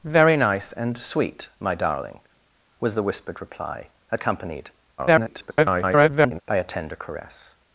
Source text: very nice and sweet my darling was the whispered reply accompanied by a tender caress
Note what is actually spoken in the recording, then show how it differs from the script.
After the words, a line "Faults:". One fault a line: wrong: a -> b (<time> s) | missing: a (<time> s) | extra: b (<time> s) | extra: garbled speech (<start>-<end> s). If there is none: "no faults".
very nice and sweet my darling was the whispered reply accompanied [garbled] by a tender caress
Faults:
extra: garbled speech (5.0-6.4 s)